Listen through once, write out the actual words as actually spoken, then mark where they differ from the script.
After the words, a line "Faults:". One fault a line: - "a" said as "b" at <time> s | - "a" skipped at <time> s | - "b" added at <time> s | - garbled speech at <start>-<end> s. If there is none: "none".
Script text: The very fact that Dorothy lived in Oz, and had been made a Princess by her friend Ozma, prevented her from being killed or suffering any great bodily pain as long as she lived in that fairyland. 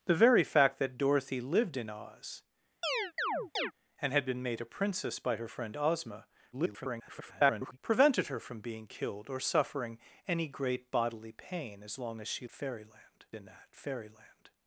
The very fact that Dorothy lived in Oz, and had been made a Princess by her friend Ozma, [garbled] prevented her from being killed or suffering any great bodily pain as long as she fairyland in that fairyland.
Faults:
- garbled speech at 6.5-7.8 s
- "lived" said as "fairyland" at 12.5 s